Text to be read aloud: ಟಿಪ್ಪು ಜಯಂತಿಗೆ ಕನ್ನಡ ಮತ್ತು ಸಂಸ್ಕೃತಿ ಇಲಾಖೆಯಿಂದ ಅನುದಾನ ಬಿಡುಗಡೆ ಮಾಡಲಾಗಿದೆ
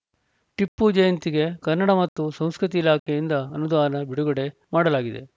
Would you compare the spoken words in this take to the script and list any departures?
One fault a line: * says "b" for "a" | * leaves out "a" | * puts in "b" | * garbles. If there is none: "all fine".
all fine